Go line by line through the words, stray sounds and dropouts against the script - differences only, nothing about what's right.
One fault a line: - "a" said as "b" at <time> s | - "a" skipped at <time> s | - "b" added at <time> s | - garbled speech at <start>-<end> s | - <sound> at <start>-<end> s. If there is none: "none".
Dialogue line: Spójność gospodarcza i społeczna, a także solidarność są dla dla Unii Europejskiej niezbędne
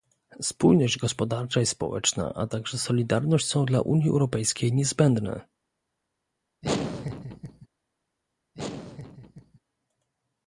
- "dla" skipped at 3.8 s
- laugh at 6.6-7.7 s
- laugh at 8.5-9.6 s